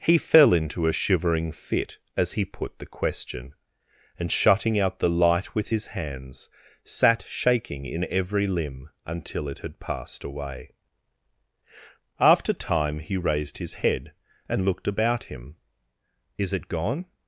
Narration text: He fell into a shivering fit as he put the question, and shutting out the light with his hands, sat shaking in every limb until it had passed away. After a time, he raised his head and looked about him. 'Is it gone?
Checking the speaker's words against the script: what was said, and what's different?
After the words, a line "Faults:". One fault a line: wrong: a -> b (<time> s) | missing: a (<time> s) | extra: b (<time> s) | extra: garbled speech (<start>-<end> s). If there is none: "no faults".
He fell into a shivering fit as he put the question, and shutting out the light with his hands, sat shaking in every limb until it had passed away. After time, he raised his head and looked about him. 'Is it gone?
Faults:
missing: a (12.5 s)